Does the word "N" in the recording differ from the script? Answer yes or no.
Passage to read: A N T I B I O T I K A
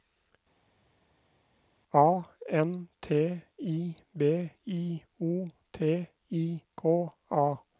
no